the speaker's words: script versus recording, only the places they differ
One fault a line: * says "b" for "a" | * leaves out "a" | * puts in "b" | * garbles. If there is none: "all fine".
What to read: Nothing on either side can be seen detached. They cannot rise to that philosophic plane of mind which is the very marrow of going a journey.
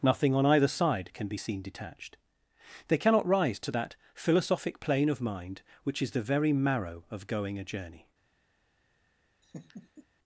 all fine